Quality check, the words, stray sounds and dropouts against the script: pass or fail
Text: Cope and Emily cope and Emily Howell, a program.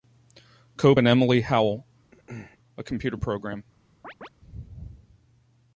fail